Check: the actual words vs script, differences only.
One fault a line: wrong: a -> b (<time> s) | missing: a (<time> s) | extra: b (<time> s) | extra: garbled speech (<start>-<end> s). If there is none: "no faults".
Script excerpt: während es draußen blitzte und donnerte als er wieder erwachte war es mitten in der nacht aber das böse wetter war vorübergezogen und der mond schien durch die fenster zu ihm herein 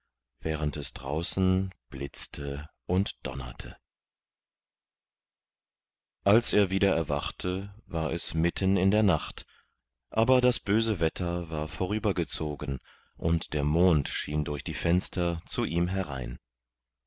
no faults